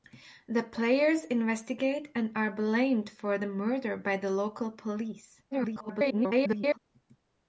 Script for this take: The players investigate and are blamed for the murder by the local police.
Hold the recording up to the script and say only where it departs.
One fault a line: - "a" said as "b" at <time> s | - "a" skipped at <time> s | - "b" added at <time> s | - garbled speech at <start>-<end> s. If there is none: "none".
- garbled speech at 5.5-6.8 s